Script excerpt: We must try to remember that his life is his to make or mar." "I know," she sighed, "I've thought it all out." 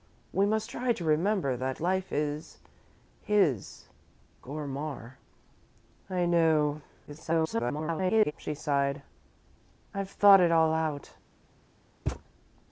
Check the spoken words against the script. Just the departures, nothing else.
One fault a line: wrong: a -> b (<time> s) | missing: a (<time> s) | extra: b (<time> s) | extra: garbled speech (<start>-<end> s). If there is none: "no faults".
missing: his (1.8 s)
missing: to make (3.8 s)
extra: garbled speech (7.1-8.3 s)